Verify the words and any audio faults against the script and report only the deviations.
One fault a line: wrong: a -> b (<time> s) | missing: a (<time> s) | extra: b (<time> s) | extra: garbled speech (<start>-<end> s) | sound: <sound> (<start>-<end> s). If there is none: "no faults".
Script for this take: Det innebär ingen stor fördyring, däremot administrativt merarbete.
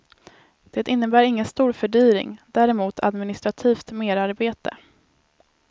no faults